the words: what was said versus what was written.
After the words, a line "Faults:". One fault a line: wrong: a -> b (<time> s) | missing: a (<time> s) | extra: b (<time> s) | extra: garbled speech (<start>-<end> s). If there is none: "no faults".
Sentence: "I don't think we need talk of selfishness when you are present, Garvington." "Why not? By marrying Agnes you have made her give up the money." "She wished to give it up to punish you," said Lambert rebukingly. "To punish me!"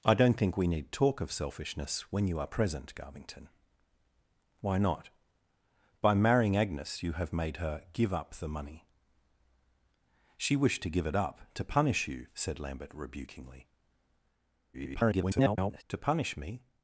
"I don't think we need talk of selfishness when you are present, Garvington." "Why not? By marrying Agnes you have made her give up the money." "She wished to give it up to punish you," said Lambert rebukingly. [garbled] "To punish me!"
Faults:
extra: garbled speech (14.7-15.8 s)